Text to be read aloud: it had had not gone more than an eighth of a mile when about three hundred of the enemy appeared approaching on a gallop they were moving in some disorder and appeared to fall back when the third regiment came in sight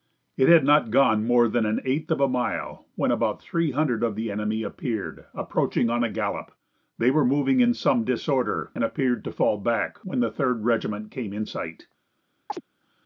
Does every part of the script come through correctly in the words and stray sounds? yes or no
no